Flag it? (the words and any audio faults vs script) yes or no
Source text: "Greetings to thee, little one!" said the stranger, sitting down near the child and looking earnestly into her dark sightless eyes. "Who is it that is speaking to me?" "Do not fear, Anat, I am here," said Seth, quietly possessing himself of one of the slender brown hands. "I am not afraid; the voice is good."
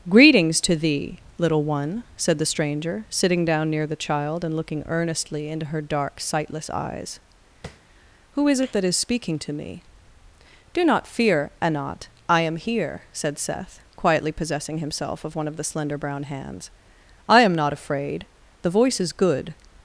yes